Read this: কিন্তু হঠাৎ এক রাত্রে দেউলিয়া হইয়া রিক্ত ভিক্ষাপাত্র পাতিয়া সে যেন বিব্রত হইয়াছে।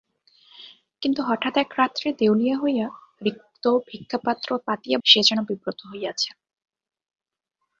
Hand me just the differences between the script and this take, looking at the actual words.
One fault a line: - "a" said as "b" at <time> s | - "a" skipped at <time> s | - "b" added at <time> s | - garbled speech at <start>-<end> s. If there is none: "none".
none